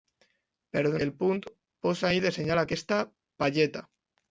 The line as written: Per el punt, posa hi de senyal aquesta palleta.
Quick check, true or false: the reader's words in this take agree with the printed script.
true